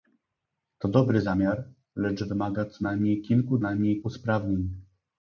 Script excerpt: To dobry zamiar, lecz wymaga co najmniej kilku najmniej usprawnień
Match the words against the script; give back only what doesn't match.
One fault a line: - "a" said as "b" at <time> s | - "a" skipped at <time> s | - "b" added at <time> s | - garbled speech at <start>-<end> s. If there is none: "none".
none